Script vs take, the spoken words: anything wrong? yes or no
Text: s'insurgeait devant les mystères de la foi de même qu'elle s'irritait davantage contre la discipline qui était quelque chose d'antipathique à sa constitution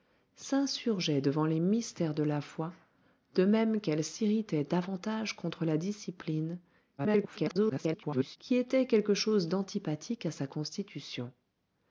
yes